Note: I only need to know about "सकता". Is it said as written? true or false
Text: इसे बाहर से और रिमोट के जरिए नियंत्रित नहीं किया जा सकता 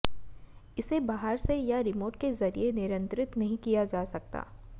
true